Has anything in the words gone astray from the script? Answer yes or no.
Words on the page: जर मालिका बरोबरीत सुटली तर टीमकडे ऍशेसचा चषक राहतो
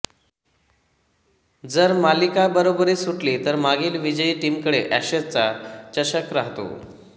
yes